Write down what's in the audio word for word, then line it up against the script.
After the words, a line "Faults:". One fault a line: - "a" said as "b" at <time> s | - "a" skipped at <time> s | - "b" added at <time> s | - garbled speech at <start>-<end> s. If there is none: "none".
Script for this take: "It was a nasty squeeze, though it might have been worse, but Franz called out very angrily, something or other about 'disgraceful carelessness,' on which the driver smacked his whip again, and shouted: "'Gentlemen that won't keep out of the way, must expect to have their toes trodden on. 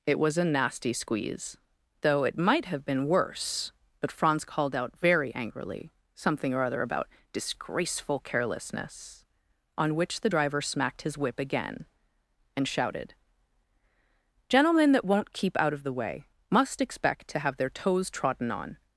"It was a nasty squeeze, though it might have been worse, but Franz called out very angrily, something or other about 'disgraceful carelessness,' on which the driver smacked his whip again, and shouted: "'Gentlemen that won't keep out of the way, must expect to have their toes trodden on.
Faults:
none